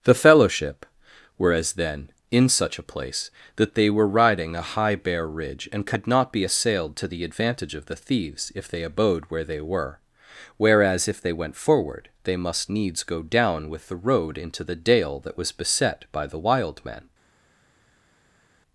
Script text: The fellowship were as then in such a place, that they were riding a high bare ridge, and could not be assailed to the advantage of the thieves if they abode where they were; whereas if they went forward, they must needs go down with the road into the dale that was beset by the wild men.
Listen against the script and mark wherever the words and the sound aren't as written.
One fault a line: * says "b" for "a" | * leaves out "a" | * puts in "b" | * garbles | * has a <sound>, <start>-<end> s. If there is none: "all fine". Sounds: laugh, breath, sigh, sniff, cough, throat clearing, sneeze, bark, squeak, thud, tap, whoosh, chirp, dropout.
all fine